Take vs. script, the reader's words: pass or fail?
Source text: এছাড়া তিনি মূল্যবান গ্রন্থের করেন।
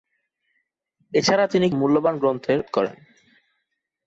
pass